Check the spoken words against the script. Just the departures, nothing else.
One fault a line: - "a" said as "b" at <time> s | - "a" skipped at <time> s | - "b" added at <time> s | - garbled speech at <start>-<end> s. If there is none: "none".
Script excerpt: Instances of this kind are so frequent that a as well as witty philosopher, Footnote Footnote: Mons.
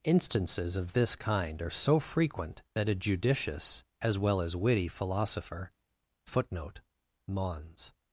- "judicious" added at 3.0 s
- "Footnote" skipped at 6.8 s